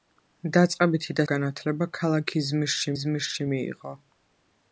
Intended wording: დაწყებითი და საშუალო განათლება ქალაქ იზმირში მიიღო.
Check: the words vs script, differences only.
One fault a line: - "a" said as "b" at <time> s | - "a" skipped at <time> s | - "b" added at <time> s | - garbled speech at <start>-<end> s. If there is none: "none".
- "საშუალო" skipped at 1.2 s
- "იზმირში" added at 3.0 s